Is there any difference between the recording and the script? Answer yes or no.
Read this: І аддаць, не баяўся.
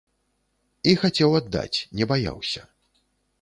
yes